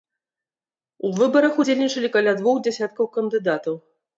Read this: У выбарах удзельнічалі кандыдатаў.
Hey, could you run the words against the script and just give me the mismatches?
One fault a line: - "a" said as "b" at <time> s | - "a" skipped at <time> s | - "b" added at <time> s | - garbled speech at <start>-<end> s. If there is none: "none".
- "каля двух дзясяткаў" added at 2.2 s